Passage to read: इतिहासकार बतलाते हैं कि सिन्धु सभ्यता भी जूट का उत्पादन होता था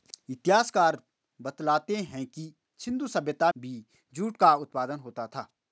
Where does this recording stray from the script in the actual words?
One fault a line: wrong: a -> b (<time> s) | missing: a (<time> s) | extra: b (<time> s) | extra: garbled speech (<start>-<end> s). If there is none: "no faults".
no faults